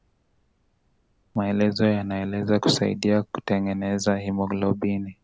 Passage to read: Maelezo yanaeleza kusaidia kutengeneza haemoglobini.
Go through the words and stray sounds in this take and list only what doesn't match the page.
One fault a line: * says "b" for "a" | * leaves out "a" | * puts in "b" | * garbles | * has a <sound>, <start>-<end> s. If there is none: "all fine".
all fine